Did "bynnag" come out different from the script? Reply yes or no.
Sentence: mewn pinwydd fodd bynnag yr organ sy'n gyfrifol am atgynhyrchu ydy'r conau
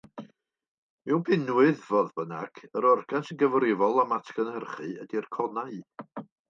no